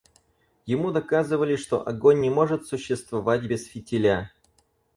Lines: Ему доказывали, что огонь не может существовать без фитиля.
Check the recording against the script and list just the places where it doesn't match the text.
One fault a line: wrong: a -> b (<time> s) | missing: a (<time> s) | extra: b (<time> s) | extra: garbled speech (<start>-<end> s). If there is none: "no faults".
no faults